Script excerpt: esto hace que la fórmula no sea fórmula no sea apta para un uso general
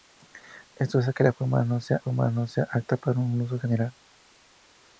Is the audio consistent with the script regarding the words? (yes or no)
yes